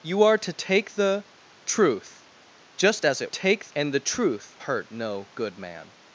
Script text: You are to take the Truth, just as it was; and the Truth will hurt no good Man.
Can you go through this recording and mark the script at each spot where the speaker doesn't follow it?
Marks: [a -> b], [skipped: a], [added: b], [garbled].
You are to take the Truth, just as it [was; -> take] and the Truth [skipped: will] hurt no good Man.